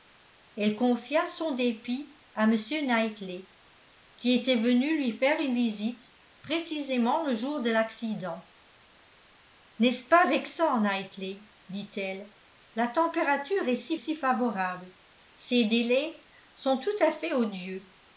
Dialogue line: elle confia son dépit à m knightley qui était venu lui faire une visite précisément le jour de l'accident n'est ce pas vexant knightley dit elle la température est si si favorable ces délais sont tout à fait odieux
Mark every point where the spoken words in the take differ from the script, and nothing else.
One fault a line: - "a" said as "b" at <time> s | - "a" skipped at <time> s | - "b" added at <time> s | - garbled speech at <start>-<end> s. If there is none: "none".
none